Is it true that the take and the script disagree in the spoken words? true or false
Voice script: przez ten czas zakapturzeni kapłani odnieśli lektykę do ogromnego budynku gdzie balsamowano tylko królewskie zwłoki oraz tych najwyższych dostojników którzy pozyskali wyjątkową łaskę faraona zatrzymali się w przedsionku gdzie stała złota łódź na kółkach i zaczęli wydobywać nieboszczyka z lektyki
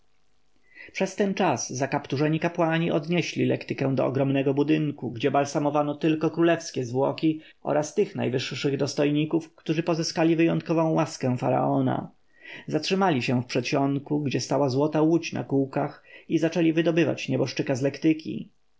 false